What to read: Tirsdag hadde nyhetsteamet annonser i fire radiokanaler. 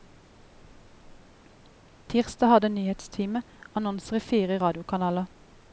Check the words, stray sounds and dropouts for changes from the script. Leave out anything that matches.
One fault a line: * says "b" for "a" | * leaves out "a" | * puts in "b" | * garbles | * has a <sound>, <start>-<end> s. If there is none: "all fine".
all fine